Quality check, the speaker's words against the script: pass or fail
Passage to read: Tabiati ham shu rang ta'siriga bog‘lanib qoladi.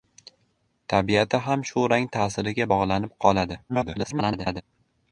fail